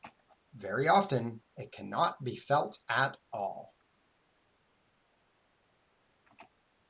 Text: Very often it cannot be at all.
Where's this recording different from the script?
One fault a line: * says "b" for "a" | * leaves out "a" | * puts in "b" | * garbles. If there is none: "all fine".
* puts in "felt"